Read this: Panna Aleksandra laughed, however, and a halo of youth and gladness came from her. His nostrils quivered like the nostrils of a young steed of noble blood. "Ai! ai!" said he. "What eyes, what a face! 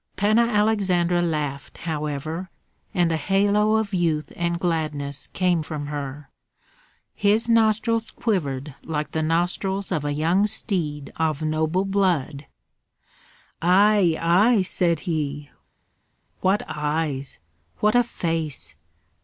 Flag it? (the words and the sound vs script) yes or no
no